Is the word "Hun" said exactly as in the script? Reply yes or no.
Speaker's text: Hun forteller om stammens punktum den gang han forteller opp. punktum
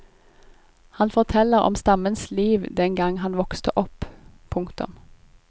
no